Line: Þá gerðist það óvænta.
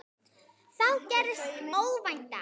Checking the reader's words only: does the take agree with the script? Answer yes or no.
no